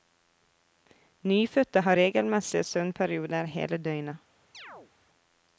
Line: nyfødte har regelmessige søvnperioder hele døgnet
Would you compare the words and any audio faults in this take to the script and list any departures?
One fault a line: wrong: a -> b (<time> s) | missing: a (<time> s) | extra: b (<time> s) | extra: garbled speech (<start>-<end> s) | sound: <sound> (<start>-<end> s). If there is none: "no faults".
sound: chirp (4.5-4.9 s)